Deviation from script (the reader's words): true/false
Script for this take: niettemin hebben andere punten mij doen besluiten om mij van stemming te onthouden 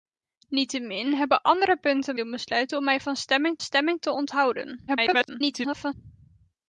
true